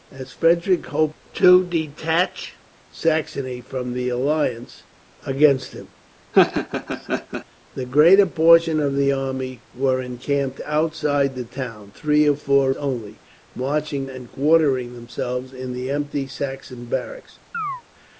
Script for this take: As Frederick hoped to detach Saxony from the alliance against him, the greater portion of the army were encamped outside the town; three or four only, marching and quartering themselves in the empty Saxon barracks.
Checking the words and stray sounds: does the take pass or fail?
fail